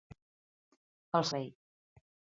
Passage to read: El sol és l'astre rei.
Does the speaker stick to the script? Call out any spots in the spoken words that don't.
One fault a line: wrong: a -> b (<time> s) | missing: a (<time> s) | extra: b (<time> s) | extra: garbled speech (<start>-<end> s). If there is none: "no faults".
missing: sol és l'astre (1.3 s)